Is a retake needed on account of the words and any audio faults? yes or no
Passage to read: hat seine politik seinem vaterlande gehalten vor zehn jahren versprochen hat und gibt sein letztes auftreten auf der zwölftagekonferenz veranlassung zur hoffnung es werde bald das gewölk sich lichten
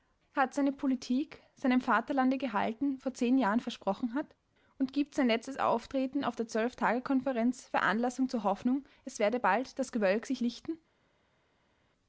no